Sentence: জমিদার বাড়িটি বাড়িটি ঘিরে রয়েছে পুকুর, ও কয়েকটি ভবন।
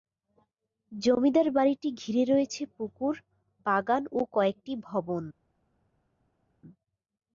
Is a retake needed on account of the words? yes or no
yes